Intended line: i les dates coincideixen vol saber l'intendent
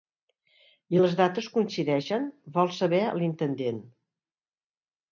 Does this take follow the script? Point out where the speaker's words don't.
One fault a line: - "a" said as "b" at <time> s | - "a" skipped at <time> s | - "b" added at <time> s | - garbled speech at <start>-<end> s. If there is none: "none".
none